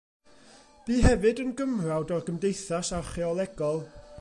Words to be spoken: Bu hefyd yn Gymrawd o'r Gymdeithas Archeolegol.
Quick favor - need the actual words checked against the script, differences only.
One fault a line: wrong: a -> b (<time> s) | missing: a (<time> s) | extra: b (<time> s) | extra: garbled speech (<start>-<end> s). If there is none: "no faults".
no faults